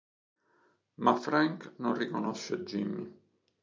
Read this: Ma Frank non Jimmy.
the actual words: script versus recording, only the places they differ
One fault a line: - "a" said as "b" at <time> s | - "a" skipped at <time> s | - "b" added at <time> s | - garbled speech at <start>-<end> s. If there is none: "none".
- "riconosce" added at 1.9 s